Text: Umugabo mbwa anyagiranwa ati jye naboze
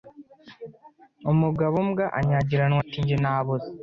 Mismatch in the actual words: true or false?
false